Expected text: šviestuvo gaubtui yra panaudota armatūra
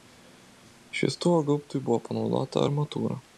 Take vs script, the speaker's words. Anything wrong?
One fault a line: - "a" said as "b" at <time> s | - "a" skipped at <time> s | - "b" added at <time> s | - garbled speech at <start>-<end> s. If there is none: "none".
- "yra" said as "buvo" at 1.9 s